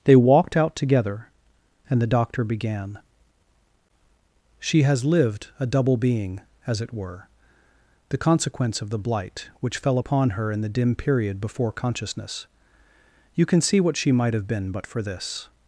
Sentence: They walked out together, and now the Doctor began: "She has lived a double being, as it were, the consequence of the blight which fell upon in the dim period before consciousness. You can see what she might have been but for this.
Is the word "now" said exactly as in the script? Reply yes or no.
no